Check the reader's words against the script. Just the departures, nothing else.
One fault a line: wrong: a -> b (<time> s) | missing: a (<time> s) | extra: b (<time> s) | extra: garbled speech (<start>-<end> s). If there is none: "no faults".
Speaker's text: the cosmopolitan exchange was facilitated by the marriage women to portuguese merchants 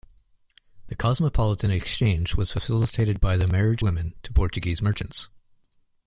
no faults